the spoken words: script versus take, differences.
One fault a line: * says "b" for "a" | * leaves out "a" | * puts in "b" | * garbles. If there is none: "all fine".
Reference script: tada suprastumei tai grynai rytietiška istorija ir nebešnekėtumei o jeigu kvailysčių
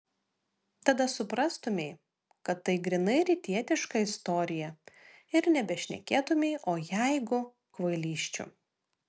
* puts in "kad"